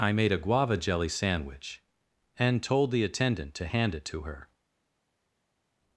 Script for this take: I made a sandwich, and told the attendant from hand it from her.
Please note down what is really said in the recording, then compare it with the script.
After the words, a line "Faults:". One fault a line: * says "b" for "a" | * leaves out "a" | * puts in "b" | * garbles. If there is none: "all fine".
I made a guava jelly sandwich, and told the attendant to hand it to her.
Faults:
* puts in "guava jelly"
* says "to" for "from"
* says "to" for "from"